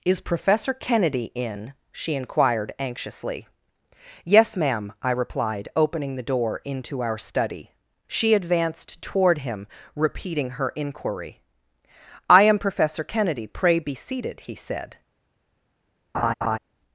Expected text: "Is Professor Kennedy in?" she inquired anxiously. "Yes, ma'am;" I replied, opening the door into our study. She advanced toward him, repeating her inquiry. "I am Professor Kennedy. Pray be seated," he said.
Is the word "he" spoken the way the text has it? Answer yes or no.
yes